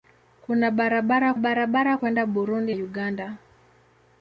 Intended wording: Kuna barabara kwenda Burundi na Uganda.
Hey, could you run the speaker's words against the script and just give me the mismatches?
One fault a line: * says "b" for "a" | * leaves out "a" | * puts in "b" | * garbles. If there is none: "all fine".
* puts in "barabara"
* leaves out "na"